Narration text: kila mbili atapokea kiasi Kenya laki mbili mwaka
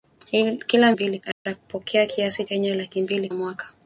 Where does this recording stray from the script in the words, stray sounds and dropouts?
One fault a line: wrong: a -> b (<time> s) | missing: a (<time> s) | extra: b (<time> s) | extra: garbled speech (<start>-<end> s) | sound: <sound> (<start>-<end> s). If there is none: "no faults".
sound: dropout (1.3-1.5 s)